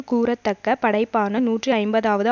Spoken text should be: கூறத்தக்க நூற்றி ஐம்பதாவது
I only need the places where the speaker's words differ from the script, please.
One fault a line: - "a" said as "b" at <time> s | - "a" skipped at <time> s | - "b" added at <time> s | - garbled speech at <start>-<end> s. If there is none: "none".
- "படைப்பான" added at 0.8 s